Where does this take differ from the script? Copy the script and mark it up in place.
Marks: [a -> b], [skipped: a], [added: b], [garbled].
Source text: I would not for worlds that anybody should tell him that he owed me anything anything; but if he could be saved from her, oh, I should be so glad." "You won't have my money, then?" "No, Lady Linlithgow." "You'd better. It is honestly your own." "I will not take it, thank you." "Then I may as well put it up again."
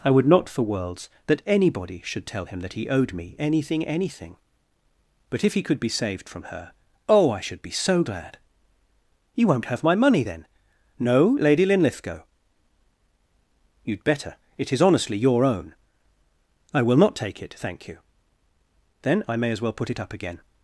I would not for worlds that anybody should tell him that he owed me anything anything; but if he could be saved from her, oh, I should be so glad." "You won't have my money, then?" "No, Lady Linlithgow." "You'd better. It is honestly your own." "I will not take it, thank you." "Then I may as well put it up again."